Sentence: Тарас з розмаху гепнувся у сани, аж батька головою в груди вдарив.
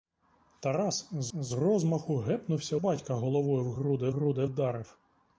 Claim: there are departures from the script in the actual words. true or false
true